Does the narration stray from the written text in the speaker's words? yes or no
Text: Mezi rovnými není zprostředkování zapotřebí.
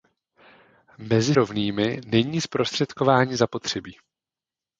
no